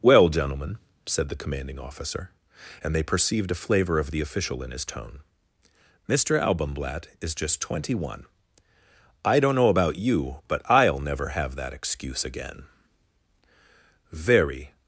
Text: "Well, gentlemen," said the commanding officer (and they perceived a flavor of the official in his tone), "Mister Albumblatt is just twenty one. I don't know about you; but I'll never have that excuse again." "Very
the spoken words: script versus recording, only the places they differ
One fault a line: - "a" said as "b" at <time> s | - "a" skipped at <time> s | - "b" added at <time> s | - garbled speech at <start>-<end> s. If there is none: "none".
none